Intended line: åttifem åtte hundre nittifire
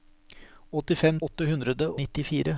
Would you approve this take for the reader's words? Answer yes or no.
yes